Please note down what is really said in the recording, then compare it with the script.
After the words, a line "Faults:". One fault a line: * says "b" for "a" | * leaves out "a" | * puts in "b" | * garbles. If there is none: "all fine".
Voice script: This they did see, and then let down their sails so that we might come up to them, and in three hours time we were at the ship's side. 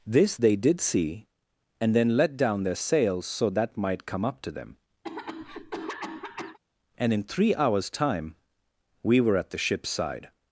This they did see, and then let down their sails so that might come up to them, and in three hours time we were at the ship's side.
Faults:
* leaves out "we"